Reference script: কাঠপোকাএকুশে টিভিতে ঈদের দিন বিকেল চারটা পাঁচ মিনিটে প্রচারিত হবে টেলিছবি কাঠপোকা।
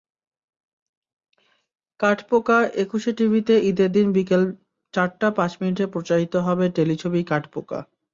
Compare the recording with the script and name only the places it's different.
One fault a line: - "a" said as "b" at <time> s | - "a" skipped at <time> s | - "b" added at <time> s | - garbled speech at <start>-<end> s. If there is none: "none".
none